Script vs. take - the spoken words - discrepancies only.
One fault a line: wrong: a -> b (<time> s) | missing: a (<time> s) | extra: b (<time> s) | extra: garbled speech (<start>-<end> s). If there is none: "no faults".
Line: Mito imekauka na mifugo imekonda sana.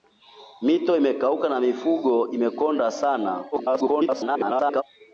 extra: garbled speech (3.5-4.8 s)